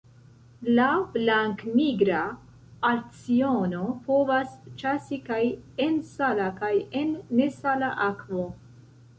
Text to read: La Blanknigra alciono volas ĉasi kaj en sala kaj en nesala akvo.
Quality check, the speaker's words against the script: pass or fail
fail